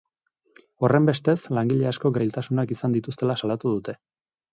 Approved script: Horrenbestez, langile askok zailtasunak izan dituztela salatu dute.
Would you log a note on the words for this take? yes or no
no